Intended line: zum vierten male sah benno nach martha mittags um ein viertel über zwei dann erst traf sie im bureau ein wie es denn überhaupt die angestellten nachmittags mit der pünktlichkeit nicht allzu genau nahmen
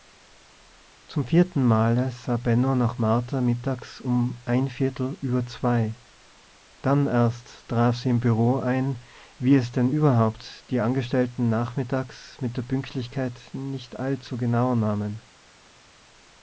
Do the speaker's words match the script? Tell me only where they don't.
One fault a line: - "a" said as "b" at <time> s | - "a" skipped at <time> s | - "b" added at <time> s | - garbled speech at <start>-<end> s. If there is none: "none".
none